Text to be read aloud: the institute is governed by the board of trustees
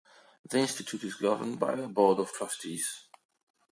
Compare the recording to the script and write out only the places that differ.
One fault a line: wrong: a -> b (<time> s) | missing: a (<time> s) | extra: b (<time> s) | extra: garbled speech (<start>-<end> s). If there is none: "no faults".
wrong: the -> a (1.7 s)